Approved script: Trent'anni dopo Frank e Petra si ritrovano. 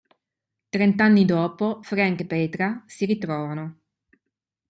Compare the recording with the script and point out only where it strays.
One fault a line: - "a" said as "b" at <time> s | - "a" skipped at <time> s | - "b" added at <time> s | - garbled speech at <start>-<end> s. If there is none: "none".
none